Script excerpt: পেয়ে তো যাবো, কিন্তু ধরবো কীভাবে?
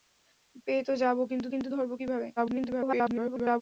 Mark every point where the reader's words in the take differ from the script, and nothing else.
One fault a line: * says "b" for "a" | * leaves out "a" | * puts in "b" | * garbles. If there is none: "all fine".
* puts in "কিন্তু"
* garbles